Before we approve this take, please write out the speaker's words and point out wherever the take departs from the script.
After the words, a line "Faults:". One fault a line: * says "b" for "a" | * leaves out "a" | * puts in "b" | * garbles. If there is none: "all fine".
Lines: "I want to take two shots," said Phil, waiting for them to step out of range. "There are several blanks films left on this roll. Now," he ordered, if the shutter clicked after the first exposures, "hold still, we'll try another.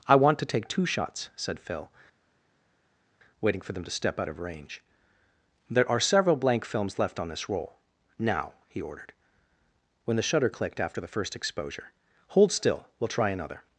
"I want to take two shots," said Phil, waiting for them to step out of range. "There are several blank films left on this roll. Now," he ordered, when the shutter clicked after the first exposure, "hold still, we'll try another.
Faults:
* says "blank" for "blanks"
* says "when" for "if"
* says "exposure" for "exposures"